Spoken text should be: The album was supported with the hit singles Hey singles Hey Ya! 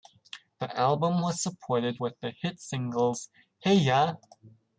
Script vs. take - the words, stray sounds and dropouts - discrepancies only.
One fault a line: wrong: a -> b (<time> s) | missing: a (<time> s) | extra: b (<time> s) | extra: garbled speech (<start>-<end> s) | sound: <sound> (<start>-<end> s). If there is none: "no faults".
missing: singles Hey (3.7 s)